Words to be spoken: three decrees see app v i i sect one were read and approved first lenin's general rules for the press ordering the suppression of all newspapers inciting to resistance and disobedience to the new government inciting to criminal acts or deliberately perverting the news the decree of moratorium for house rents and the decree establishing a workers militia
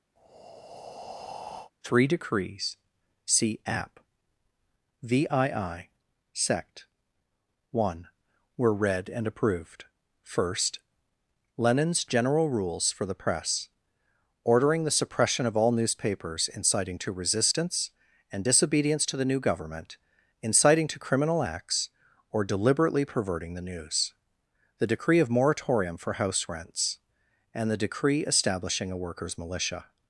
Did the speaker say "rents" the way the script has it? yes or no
yes